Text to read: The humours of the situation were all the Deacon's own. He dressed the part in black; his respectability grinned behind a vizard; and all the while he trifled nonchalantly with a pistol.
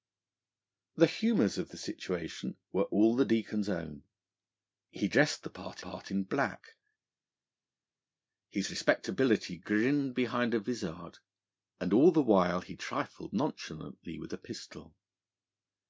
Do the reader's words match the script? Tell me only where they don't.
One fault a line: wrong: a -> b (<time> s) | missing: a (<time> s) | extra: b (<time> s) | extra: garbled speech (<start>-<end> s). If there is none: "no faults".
extra: part (5.8 s)